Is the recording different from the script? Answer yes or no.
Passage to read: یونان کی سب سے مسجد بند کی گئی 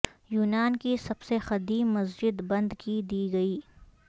yes